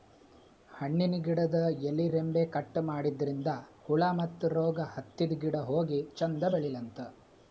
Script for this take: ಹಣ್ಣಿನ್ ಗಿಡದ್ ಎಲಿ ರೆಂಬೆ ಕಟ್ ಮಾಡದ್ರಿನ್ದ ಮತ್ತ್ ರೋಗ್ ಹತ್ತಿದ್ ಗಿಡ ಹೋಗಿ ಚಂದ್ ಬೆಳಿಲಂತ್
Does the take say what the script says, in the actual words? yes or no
no